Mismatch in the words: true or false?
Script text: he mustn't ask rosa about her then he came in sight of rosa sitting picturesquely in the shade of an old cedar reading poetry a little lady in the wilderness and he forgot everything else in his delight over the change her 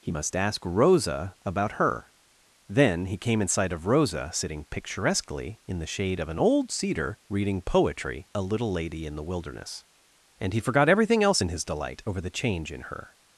true